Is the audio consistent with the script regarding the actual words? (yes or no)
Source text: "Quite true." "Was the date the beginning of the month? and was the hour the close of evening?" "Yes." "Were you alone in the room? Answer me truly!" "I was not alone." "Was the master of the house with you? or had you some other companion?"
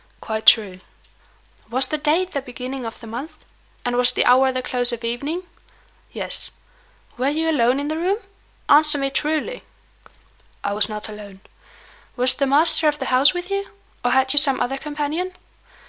yes